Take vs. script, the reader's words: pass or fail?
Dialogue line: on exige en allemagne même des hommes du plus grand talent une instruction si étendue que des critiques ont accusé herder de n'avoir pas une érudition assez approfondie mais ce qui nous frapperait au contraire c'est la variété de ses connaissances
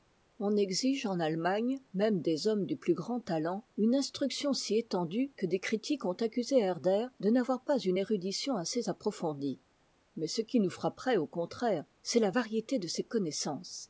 pass